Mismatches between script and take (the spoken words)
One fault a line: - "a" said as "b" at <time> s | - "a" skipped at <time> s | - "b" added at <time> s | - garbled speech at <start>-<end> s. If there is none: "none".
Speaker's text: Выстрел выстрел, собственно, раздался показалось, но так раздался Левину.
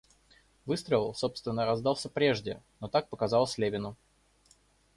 - "выстрел" skipped at 1.1 s
- "показалось" said as "прежде" at 2.1 s
- "раздался" said as "показалось" at 3.1 s